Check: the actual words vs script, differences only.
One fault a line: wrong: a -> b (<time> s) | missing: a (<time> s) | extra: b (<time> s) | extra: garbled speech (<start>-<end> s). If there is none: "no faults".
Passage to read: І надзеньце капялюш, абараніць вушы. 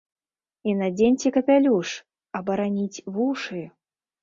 no faults